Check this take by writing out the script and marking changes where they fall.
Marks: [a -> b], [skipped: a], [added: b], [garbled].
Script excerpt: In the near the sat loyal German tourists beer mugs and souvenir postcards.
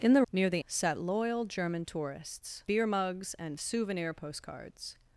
In the near the sat loyal German tourists beer mugs and souvenir postcards.